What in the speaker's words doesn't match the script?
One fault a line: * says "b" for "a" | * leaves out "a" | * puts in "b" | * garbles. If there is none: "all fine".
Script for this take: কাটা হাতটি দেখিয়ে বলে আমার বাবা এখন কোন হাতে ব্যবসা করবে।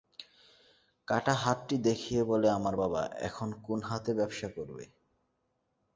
all fine